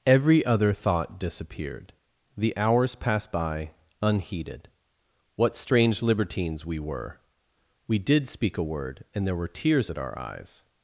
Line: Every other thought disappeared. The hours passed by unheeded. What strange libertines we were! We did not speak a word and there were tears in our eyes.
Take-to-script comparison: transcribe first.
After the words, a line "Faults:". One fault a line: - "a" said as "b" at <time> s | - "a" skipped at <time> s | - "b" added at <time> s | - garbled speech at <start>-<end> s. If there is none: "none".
Every other thought disappeared. The hours passed by unheeded. What strange libertines we were! We did speak a word and there were tears at our eyes.
Faults:
- "not" skipped at 8.3 s
- "in" said as "at" at 9.9 s